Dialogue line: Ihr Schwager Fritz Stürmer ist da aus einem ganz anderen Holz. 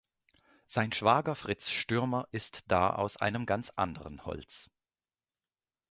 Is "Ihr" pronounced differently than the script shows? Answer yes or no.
yes